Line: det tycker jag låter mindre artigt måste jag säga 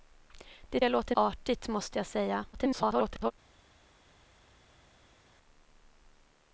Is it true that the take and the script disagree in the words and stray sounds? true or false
true